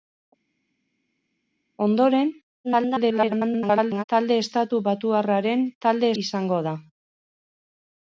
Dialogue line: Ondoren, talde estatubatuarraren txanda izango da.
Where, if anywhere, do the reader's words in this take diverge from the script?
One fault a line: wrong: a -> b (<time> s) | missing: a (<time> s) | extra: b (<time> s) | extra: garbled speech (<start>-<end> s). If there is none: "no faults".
extra: garbled speech (2.6-4.0 s)
wrong: txanda -> talde (5.8 s)